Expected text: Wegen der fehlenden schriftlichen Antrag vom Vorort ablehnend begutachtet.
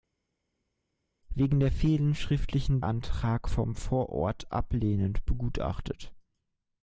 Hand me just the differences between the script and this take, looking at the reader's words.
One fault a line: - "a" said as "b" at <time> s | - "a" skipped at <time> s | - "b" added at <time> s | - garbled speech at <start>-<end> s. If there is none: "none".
none